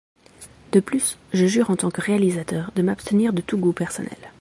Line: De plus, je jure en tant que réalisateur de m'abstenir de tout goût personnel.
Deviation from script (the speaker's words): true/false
false